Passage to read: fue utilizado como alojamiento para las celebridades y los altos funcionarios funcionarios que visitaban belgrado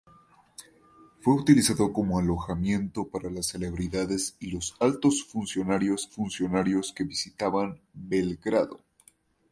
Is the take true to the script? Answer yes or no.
yes